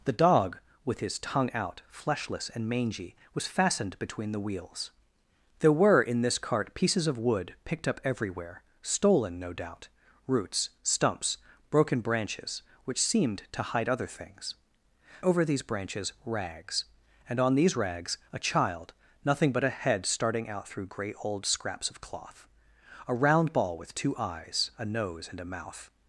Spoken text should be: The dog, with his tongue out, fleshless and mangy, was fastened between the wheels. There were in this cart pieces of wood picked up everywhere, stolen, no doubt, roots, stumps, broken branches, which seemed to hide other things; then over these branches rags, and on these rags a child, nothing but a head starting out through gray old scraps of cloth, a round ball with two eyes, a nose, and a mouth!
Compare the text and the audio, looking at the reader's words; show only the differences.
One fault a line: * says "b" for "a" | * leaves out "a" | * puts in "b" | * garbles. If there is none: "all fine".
* leaves out "then"